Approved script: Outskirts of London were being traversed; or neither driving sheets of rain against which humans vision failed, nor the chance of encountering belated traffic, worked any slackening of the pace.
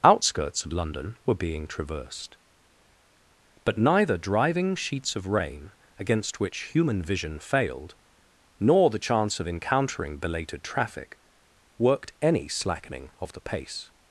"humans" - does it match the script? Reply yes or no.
no